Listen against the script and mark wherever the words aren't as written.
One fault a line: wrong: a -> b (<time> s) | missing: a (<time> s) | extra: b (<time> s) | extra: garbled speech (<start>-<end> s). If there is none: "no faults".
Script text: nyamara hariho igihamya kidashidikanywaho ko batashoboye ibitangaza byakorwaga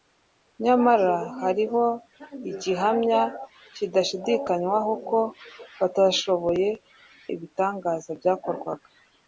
no faults